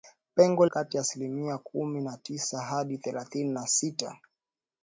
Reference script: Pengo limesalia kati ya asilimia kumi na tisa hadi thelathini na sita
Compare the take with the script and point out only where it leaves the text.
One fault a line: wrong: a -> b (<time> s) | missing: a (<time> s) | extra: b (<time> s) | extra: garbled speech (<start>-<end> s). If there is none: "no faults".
missing: limesalia (0.7 s)